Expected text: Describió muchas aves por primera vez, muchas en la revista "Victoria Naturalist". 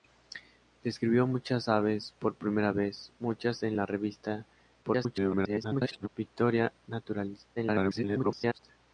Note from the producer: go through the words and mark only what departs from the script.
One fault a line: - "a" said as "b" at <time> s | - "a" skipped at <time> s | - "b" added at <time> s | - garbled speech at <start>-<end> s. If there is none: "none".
- garbled speech at 4.8-6.1 s
- garbled speech at 7.6-8.6 s